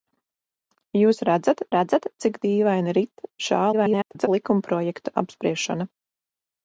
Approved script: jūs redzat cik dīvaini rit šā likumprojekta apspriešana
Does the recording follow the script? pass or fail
fail